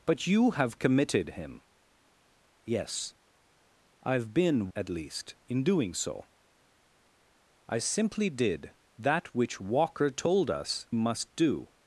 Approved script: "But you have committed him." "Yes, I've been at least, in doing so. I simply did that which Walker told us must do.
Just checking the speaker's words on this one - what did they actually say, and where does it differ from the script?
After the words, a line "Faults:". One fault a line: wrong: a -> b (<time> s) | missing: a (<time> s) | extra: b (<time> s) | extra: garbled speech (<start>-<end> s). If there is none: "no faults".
"But you have committed him." "Yes, I've been at least, in doing so. I simply did that which Walker told us must do.
Faults:
no faults